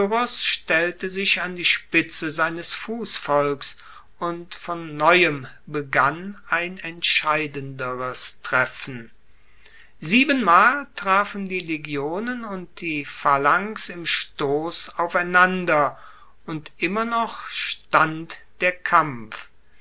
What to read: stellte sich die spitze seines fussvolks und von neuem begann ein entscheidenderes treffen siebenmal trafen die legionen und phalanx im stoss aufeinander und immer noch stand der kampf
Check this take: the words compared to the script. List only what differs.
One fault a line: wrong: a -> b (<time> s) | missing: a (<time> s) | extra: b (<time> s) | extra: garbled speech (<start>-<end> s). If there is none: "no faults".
extra: an (1.4 s)
extra: die (12.8 s)